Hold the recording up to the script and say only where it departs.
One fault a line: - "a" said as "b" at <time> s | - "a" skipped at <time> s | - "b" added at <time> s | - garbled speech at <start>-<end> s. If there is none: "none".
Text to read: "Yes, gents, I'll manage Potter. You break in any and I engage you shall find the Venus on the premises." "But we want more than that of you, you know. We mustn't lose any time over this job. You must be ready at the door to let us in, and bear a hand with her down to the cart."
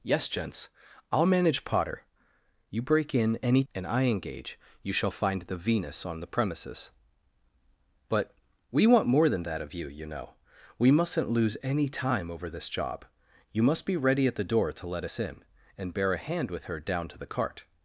none